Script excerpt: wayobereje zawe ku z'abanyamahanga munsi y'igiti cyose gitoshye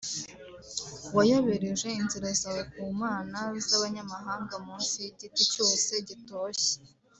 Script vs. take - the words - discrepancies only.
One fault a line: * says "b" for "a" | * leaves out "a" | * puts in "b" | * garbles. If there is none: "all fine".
* puts in "inzira"
* puts in "mana"